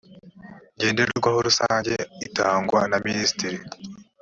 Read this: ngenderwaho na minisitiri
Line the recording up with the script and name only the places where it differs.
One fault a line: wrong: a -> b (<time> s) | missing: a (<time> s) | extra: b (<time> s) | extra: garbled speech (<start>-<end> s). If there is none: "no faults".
extra: rusange itangwa (1.5 s)